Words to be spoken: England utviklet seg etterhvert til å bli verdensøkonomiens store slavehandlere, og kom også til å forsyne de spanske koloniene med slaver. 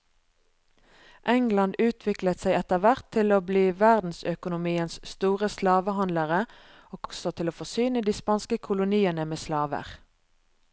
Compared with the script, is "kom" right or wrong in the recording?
wrong